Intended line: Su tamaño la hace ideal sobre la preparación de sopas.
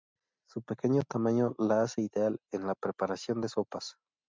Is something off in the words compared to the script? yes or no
yes